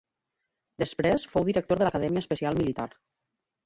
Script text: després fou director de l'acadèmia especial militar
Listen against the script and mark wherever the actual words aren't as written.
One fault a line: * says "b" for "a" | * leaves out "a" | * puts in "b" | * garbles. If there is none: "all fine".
all fine